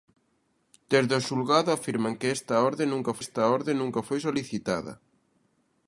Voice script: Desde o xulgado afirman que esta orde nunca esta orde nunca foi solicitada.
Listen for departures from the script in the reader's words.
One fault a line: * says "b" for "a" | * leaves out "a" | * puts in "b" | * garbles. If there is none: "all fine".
all fine